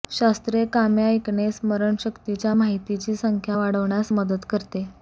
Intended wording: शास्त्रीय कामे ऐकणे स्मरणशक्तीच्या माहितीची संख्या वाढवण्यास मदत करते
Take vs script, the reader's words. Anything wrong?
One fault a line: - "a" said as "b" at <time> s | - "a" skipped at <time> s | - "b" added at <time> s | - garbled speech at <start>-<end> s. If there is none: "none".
none